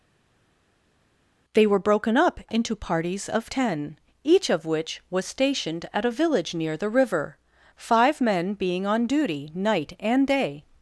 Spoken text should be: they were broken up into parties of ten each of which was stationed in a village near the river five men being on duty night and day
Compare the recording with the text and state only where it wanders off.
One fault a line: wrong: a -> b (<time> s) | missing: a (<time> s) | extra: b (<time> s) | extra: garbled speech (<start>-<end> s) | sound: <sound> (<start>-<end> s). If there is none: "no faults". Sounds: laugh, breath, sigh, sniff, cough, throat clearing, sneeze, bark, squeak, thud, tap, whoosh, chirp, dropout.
wrong: in -> at (5.9 s)